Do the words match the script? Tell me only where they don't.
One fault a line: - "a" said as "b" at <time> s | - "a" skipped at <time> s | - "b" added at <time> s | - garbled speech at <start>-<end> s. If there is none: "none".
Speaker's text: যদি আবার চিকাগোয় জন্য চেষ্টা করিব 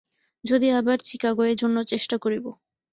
none